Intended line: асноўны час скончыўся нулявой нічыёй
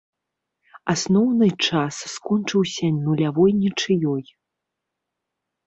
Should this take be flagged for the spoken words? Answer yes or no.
no